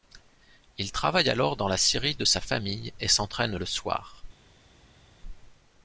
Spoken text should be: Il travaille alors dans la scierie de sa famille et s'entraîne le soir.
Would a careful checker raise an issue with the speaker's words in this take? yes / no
no